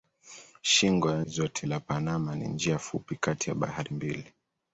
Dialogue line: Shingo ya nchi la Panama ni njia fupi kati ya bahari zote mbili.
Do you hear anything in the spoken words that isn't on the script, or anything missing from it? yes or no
yes